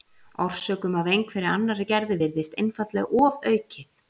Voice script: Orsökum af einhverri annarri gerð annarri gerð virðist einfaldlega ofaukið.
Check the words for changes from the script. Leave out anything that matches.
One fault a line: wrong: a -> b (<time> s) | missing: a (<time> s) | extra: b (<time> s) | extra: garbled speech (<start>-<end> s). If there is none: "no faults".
missing: annarri gerð (2.1 s)